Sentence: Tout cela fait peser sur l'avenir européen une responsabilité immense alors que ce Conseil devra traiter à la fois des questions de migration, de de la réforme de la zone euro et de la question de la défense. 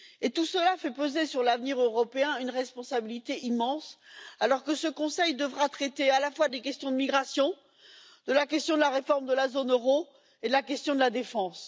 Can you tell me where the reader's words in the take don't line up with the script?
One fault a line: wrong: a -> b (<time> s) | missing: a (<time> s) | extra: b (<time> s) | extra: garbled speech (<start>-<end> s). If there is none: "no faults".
extra: la question (8.3 s)